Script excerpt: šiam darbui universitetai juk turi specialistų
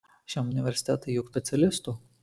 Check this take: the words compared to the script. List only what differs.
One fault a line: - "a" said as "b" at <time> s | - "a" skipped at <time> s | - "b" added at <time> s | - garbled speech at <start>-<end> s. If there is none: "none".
- "darbui" skipped at 0.5 s
- "turi" skipped at 1.3 s